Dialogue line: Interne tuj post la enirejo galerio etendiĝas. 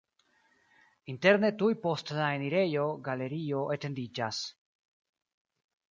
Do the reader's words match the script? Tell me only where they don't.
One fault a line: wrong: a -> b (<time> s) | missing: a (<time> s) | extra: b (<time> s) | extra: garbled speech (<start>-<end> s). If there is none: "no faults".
no faults